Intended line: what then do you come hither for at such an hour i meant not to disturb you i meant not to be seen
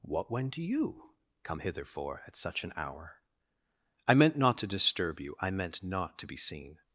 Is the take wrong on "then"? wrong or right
wrong